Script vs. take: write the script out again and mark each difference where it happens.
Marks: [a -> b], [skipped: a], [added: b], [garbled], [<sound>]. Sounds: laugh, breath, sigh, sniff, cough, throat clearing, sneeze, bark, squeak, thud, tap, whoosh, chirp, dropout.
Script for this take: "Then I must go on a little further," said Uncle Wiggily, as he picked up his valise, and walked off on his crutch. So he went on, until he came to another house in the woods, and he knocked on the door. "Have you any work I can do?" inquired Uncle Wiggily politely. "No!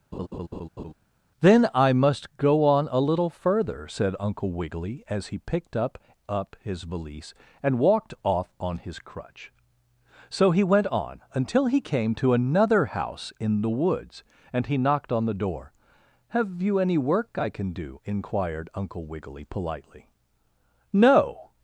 [laugh] "Then I must go on a little further," said Uncle Wiggily, as he picked up [added: up] his valise, and walked off on his crutch. So he went on, until he came to another house in the woods, and he knocked on the door. "Have you any work I can do?" inquired Uncle Wiggily politely. "No!